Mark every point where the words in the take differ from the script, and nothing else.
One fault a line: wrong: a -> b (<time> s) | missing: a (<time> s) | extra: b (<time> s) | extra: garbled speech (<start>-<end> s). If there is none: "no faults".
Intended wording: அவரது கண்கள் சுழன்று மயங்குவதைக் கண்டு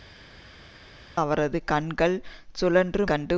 missing: மயங்குவதைக் (3.0 s)